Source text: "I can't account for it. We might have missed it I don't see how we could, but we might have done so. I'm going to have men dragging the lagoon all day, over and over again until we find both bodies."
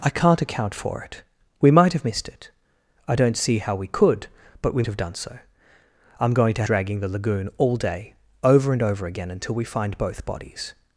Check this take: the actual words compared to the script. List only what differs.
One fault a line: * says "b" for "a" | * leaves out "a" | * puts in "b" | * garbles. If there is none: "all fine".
* leaves out "might"
* leaves out "have men"